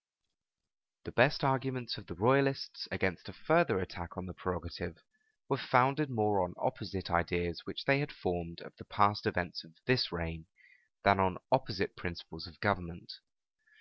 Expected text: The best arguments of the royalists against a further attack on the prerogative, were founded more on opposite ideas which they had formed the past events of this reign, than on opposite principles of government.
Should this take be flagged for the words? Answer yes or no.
yes